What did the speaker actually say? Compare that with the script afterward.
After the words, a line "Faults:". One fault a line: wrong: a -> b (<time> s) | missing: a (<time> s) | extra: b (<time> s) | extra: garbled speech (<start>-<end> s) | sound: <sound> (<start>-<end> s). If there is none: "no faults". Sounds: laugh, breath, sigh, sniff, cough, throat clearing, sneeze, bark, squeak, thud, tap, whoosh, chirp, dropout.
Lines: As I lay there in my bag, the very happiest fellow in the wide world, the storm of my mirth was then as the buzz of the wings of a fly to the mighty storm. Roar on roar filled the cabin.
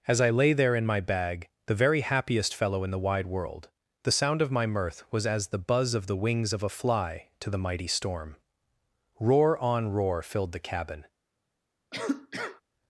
As I lay there in my bag, the very happiest fellow in the wide world, the sound of my mirth was as the buzz of the wings of a fly to the mighty storm. Roar on roar filled the cabin.
Faults:
wrong: storm -> sound (4.1 s)
missing: then (5.3 s)
sound: cough (11.9-12.6 s)